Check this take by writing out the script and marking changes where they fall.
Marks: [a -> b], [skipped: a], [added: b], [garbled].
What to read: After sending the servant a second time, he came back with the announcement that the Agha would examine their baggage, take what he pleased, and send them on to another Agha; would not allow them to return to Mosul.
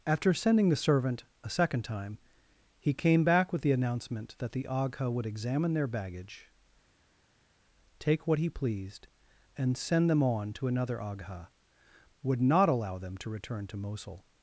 After sending the servant a second time, he came back with the announcement that the Agha would examine their baggage, take what he pleased, and send them on to another Agha; would not allow them to return to Mosul.